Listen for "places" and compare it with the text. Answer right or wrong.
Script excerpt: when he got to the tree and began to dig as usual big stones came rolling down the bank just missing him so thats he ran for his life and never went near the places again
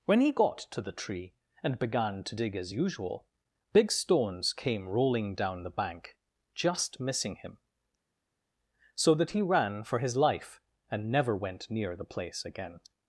wrong